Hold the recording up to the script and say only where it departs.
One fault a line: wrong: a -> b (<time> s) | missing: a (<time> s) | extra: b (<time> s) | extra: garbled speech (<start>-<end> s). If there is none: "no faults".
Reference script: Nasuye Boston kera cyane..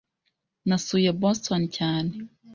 missing: kera (1.6 s)